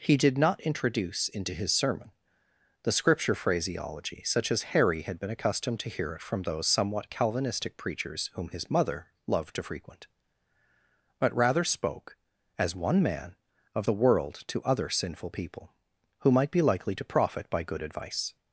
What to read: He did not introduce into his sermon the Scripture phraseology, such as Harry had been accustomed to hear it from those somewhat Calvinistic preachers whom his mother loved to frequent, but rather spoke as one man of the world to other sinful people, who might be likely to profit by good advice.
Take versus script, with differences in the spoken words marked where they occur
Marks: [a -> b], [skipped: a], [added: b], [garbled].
He did not introduce into his sermon the Scripture phraseology, such as Harry had been accustomed to hear it from those somewhat Calvinistic preachers whom his mother loved to frequent, but rather spoke as one man of the world to other sinful people, who might be likely to profit by good advice.